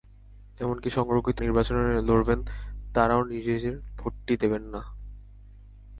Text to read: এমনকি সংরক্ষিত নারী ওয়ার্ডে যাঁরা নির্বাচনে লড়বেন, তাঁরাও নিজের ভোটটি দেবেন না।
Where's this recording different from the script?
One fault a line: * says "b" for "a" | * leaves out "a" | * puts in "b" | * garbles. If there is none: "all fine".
* leaves out "নারী ওয়ার্ডে যাঁরা"